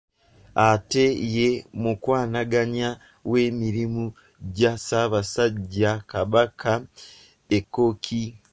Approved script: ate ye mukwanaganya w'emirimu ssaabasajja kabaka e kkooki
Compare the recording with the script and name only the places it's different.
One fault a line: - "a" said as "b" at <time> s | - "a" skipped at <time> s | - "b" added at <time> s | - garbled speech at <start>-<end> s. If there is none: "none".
- "gya" added at 4.5 s